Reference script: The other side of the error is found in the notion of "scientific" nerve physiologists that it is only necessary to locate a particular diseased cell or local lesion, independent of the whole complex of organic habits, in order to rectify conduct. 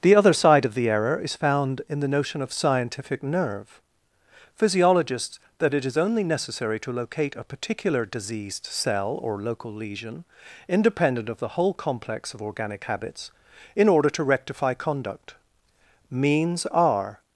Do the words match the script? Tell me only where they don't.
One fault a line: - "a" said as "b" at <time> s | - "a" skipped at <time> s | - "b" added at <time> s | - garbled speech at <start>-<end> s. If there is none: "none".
- "Means are" added at 16.1 s